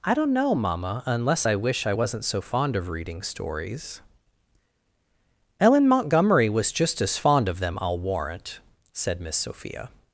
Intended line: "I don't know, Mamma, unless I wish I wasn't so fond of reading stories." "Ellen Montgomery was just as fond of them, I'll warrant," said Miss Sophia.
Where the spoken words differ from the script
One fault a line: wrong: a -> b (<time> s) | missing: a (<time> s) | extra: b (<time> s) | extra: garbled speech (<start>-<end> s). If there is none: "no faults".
no faults